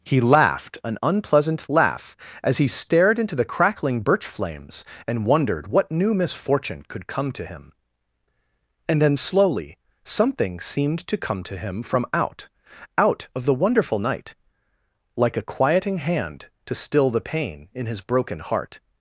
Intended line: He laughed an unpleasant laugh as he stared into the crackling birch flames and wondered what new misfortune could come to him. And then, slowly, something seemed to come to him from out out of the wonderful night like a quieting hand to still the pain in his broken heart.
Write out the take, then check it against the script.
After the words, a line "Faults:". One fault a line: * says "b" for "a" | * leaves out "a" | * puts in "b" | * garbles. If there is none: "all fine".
He laughed an unpleasant laugh as he stared into the crackling birch flames and wondered what new misfortune could come to him. And then, slowly, something seemed to come to him from out out of the wonderful night like a quieting hand to still the pain in his broken heart.
Faults:
all fine